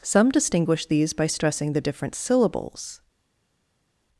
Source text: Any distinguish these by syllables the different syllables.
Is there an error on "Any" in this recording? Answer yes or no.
yes